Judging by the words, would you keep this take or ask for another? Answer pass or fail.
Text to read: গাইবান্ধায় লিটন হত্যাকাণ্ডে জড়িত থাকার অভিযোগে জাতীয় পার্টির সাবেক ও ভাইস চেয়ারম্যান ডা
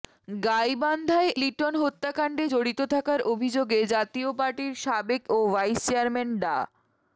pass